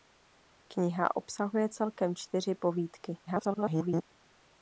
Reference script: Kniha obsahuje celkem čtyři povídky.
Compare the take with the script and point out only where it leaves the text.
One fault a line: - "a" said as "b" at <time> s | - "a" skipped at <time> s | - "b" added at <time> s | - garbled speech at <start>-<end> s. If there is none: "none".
- garbled speech at 3.3-4.0 s